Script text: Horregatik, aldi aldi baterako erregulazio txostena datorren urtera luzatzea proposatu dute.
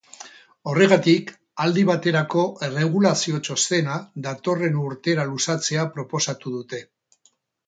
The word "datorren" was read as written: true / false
true